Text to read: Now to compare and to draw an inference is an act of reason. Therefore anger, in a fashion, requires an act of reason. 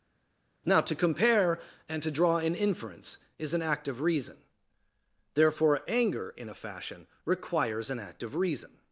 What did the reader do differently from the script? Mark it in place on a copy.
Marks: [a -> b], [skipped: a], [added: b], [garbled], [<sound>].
Now to compare and to draw an inference is an act of reason. Therefore anger, in a fashion, requires an act of reason.